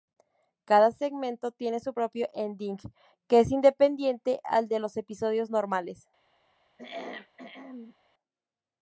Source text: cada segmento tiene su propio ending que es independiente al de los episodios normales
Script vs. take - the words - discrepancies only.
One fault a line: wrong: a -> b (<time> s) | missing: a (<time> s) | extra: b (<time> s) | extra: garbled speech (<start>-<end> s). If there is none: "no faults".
no faults